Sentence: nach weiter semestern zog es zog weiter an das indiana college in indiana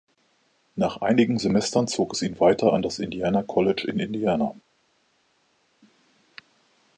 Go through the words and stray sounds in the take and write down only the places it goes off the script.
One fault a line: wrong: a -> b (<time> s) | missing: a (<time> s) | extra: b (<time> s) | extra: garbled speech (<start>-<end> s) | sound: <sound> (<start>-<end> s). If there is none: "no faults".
wrong: weiter -> einigen (1.0 s)
wrong: zog -> ihn (2.2 s)